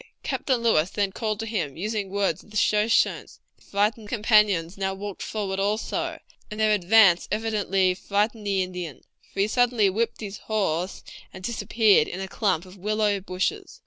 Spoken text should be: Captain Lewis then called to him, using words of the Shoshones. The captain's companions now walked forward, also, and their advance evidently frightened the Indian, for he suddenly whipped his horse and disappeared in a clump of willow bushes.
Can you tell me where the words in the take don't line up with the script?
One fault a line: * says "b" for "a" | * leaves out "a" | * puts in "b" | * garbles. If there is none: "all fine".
* says "frightened" for "captain's"